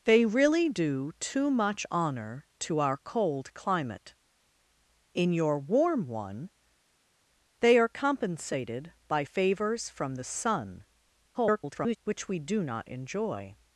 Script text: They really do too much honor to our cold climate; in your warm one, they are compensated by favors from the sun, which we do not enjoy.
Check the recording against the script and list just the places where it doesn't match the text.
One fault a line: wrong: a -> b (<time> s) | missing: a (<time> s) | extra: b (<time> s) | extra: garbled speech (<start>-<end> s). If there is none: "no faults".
extra: garbled speech (11.3-12.0 s)